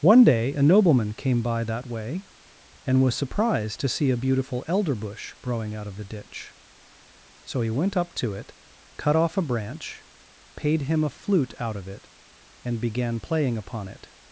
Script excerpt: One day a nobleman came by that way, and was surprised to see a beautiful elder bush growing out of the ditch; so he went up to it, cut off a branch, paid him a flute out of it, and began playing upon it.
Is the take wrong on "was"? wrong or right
right